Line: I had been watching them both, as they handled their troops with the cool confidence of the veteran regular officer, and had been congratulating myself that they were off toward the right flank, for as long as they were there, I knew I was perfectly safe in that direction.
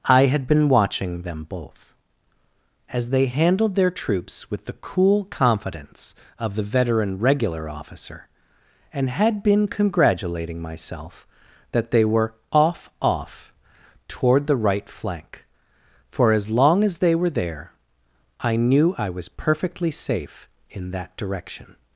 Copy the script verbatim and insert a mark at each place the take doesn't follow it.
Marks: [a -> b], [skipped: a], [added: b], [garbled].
I had been watching them both, as they handled their troops with the cool confidence of the veteran regular officer, and had been congratulating myself that they were off [added: off] toward the right flank, for as long as they were there, I knew I was perfectly safe in that direction.